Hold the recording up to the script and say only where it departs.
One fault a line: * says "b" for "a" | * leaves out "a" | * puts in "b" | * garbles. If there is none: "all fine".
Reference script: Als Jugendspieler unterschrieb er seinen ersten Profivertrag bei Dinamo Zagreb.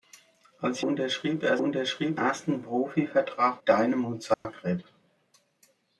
* leaves out "Jugendspieler"
* says "unterschrieb" for "seinen"
* leaves out "bei"